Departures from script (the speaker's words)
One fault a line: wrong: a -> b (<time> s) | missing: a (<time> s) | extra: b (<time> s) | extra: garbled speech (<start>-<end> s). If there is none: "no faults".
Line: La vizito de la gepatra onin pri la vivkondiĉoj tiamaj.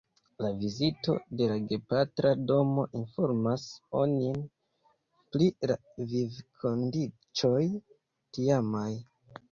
extra: domo informas (2.5 s)